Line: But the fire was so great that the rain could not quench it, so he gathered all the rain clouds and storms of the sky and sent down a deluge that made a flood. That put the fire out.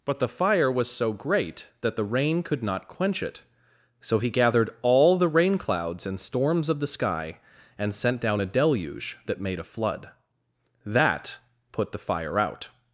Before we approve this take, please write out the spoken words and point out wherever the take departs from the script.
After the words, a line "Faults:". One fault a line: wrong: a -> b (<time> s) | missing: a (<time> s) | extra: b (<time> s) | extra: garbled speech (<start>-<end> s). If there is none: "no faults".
But the fire was so great that the rain could not quench it, so he gathered all the rain clouds and storms of the sky and sent down a deluge that made a flood. That put the fire out.
Faults:
no faults